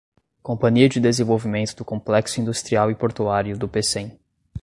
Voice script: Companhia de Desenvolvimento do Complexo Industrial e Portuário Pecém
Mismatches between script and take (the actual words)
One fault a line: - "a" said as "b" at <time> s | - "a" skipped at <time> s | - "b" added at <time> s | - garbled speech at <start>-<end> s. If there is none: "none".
- "do" added at 3.6 s